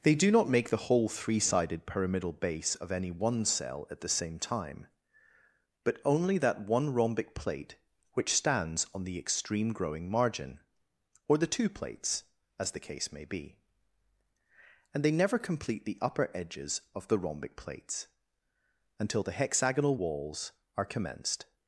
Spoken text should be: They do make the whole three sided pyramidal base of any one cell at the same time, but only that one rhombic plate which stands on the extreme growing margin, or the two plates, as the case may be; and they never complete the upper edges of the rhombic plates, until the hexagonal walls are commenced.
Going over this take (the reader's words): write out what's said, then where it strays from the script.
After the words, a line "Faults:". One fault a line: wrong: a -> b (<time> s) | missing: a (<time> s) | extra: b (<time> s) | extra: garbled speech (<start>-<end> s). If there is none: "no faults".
They do not make the whole three sided pyramidal base of any one cell at the same time, but only that one rhombic plate which stands on the extreme growing margin, or the two plates, as the case may be; and they never complete the upper edges of the rhombic plates, until the hexagonal walls are commenced.
Faults:
extra: not (0.3 s)